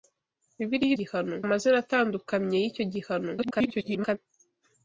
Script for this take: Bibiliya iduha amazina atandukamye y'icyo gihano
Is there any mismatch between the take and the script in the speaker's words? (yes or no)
yes